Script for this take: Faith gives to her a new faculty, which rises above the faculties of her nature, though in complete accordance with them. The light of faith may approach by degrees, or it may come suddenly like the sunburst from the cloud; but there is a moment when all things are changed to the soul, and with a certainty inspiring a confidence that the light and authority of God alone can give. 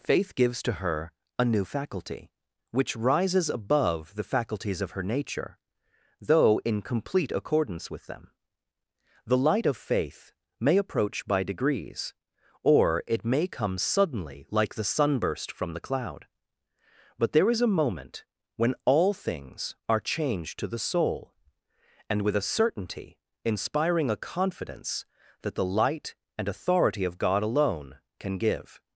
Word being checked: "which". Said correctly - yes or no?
yes